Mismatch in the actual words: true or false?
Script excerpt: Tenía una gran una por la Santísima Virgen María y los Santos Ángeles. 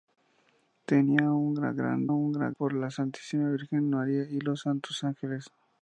false